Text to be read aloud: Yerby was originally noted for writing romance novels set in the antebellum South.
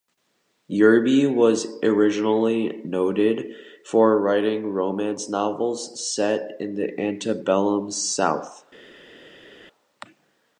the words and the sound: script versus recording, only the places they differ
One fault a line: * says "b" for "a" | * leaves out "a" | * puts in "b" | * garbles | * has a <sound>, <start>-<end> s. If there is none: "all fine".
all fine